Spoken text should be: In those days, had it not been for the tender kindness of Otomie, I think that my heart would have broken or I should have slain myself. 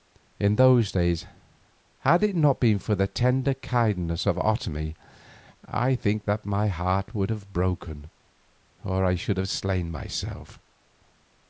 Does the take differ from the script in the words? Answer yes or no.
no